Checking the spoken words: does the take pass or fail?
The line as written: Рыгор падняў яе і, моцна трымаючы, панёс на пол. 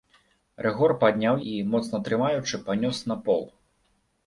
fail